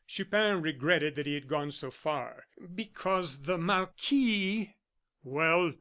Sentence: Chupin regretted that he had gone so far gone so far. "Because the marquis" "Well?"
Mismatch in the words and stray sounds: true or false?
true